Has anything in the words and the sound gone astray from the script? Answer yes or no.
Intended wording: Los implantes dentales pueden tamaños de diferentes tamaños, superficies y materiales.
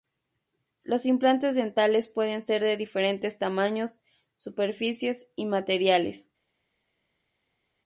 yes